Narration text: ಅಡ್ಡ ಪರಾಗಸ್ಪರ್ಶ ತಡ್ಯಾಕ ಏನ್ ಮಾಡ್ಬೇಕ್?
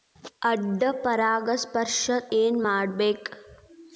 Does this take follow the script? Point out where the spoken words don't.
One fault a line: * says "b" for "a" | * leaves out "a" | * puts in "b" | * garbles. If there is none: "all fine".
* leaves out "ತಡ್ಯಾಕ"